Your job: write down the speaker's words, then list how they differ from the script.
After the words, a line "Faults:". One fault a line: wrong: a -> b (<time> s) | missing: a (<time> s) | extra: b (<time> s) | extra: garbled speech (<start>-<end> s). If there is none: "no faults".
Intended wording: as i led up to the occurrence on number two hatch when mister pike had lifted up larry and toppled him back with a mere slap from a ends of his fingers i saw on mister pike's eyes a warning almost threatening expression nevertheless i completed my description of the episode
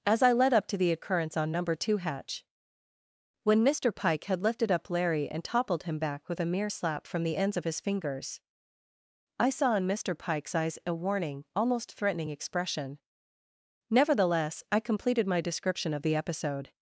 as i led up to the occurrence on number two hatch when mister pike had lifted up larry and toppled him back with a mere slap from the ends of his fingers i saw in mister pike's eyes a warning almost threatening expression nevertheless i completed my description of the episode
Faults:
wrong: a -> the (7.2 s)
wrong: on -> in (9.7 s)